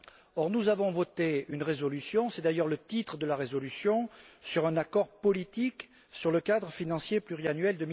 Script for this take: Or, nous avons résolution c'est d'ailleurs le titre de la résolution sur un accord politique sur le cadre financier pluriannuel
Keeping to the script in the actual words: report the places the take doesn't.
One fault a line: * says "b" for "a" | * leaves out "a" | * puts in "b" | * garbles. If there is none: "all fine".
* puts in "voté une"